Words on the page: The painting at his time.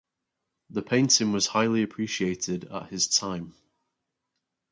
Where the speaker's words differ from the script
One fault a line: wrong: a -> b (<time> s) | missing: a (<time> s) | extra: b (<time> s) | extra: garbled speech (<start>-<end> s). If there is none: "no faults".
extra: was highly appreciated (1.3 s)